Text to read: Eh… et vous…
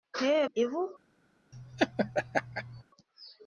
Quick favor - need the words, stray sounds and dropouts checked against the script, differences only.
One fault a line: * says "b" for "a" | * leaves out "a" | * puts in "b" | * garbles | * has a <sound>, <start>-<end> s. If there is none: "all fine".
* has a laugh, 1.5-2.8 s